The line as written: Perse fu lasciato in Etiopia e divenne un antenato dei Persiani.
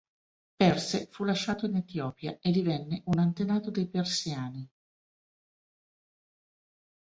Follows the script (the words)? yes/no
yes